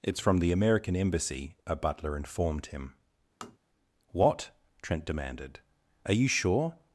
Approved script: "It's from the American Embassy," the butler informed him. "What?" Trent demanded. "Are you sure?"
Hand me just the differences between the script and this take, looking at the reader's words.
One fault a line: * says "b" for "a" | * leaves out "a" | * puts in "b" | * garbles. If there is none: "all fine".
* says "a" for "the"